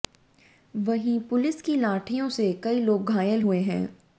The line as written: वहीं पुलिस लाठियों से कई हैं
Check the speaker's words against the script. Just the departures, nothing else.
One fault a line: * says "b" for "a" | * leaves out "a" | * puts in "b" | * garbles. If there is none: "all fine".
* puts in "की"
* puts in "लोग घायल हुए"